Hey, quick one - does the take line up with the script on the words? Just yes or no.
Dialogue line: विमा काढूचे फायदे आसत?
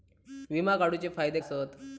yes